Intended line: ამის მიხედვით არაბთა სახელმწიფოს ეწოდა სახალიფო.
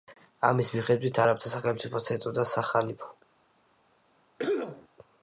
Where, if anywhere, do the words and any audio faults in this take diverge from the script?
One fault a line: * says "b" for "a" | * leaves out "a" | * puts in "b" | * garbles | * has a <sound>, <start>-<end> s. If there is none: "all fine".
* has a cough, 4.4-4.9 s